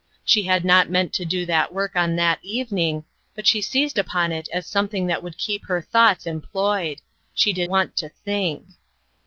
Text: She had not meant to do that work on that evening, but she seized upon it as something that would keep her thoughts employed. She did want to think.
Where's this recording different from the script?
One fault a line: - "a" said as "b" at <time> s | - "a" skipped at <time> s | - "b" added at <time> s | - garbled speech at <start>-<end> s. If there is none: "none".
none